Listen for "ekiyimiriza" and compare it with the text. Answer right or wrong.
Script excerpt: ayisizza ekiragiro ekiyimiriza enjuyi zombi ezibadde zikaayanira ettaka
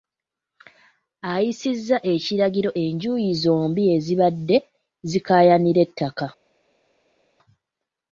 wrong